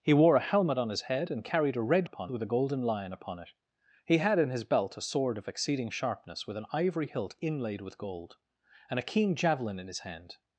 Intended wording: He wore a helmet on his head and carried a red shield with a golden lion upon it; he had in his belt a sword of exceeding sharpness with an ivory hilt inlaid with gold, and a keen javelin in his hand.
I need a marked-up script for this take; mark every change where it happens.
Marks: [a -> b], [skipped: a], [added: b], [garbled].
He wore a helmet on his head and carried a red [shield -> upon] with a golden lion upon it; he had in his belt a sword of exceeding sharpness with an ivory hilt inlaid with gold, and a keen javelin in his hand.